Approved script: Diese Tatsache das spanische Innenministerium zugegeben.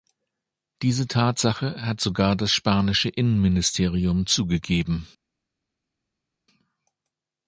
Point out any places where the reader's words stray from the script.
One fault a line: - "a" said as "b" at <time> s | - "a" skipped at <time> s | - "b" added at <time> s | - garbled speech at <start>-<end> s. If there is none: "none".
- "hat sogar" added at 1.9 s